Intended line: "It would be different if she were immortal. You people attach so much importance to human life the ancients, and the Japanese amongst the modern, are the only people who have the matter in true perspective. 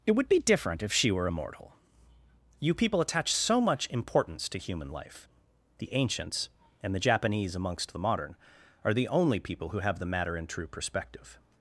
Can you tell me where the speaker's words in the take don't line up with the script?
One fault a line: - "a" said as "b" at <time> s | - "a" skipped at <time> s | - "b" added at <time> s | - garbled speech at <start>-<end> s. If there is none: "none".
none